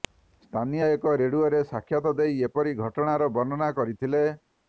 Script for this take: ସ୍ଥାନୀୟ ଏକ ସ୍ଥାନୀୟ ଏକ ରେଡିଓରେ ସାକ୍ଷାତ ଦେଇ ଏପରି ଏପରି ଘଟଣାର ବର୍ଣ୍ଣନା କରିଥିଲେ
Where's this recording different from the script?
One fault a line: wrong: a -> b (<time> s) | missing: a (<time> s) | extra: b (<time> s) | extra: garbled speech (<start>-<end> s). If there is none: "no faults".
missing: ସ୍ଥାନୀୟ ଏକ (1.1 s)
missing: ଏପରି (2.8 s)